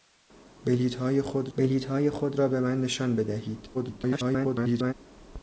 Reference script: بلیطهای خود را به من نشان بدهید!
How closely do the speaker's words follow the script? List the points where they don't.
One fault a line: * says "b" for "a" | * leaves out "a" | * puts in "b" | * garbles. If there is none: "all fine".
* puts in "بلیطهای خود"
* garbles